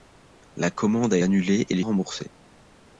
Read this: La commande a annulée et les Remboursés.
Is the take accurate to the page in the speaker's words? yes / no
yes